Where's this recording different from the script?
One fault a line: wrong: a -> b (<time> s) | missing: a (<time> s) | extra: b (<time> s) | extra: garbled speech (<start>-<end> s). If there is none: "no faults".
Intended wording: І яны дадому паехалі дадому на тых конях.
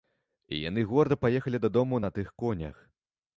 wrong: дадому -> горда (0.9 s)